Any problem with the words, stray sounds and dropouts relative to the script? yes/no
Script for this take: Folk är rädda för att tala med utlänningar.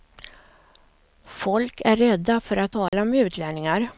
yes